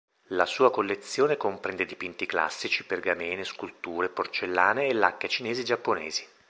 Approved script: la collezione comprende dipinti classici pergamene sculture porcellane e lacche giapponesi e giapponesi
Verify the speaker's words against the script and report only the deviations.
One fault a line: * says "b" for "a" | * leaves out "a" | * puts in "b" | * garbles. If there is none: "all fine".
* puts in "sua"
* says "cinesi" for "giapponesi"